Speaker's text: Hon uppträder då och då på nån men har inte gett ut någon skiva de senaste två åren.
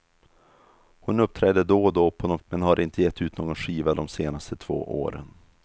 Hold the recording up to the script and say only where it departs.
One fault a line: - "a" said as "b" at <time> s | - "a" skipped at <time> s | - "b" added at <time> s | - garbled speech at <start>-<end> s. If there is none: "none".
none